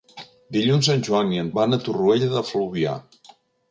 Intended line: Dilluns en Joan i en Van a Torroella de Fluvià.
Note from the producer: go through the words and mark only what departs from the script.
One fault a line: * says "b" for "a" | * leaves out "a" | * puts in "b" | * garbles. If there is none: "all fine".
all fine